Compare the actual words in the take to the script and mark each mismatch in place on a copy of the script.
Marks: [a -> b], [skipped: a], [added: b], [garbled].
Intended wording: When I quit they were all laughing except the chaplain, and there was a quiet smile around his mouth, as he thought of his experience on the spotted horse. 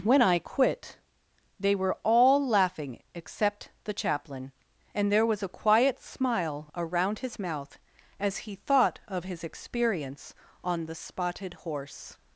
When I quit they were all laughing except the chaplain, and there was a quiet smile around his mouth, as he thought of his experience on the spotted horse.